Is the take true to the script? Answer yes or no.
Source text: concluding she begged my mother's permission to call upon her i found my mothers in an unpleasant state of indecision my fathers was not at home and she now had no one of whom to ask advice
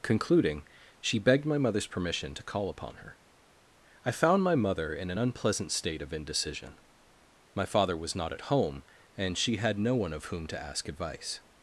no